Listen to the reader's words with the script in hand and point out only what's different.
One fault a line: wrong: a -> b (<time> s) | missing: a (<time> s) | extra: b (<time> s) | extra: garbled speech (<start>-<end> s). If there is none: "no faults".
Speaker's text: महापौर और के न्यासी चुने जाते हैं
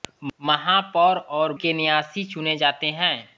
no faults